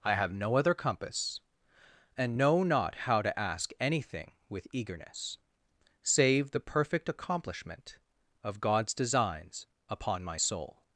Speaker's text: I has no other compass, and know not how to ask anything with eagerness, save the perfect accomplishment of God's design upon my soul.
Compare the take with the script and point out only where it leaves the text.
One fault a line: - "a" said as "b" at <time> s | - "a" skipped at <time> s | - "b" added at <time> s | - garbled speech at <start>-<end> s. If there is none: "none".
- "has" said as "have" at 0.1 s
- "design" said as "designs" at 8.9 s